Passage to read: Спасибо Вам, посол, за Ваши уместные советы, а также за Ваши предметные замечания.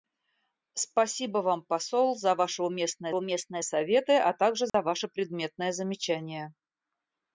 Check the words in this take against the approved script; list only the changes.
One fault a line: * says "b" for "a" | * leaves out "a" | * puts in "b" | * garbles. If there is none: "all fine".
* puts in "уместные"